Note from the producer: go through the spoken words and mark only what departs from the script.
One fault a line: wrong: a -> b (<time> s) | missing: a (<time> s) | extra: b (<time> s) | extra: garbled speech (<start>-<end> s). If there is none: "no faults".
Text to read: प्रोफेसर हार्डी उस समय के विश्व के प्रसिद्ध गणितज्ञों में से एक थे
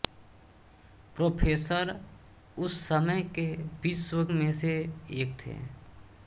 missing: हार्डी (1.9 s)
missing: के प्रसिद्ध गणितज्ञों (4.2 s)